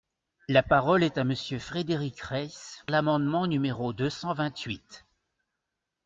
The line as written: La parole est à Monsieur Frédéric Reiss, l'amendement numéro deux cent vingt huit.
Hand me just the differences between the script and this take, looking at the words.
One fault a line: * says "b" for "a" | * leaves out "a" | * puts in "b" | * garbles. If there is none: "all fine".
all fine